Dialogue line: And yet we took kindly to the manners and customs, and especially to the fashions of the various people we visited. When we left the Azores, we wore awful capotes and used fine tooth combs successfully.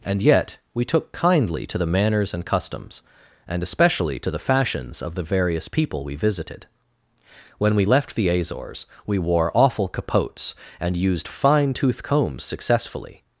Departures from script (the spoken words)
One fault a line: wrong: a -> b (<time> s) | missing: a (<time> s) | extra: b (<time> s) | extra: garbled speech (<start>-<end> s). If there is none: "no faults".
no faults